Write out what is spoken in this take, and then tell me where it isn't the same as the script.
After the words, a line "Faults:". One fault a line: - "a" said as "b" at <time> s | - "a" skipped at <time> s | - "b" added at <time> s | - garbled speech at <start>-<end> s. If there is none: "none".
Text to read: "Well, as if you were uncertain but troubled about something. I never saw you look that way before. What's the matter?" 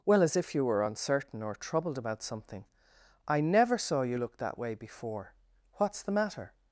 "Well, as if you were uncertain or troubled about something. I never saw you look that way before. What's the matter?"
Faults:
- "but" said as "or" at 1.4 s